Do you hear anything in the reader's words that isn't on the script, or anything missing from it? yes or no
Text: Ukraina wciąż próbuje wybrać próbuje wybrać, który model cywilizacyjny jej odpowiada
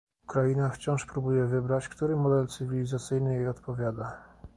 yes